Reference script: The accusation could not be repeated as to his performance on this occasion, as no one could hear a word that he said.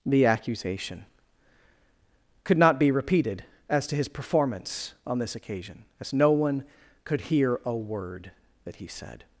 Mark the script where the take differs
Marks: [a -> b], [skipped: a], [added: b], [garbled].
The accusation could not be repeated as to his performance on this occasion, as no one could hear a word that he said.